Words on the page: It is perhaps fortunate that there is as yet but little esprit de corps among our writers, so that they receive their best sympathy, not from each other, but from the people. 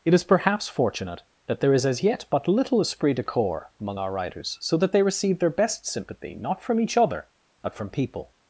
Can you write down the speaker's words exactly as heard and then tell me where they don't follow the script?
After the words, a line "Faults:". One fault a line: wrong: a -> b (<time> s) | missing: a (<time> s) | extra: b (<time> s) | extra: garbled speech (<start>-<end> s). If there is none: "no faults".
It is perhaps fortunate that there is as yet but little esprit de corps among our writers, so that they receive their best sympathy, not from each other, but from people.
Faults:
missing: the (7.9 s)